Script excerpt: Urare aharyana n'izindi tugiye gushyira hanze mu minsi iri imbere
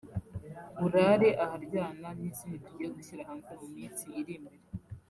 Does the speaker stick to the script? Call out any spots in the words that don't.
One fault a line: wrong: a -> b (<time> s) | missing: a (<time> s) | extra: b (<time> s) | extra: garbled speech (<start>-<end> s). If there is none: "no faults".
no faults